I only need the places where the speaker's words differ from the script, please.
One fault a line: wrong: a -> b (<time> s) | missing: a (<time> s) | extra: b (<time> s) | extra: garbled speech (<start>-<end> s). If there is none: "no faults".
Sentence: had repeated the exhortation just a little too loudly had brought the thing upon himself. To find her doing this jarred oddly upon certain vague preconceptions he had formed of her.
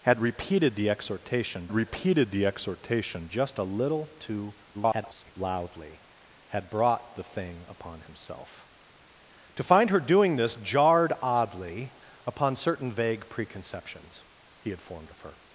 extra: repeated the exhortation (1.7 s)
extra: garbled speech (4.7-5.3 s)